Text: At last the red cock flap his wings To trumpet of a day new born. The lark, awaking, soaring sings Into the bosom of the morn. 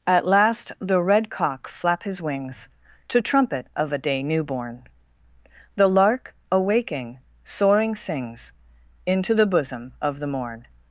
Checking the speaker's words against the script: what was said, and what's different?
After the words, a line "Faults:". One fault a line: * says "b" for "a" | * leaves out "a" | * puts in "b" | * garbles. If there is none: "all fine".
At last the red cock flap his wings To trumpet of a day new born. The lark, awaking, soaring sings Into the bosom of the morn.
Faults:
all fine